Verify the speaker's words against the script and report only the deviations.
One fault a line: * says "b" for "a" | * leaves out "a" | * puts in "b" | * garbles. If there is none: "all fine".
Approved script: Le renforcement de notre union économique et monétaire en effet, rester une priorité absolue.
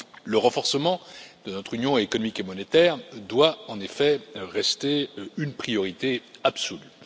* puts in "doit"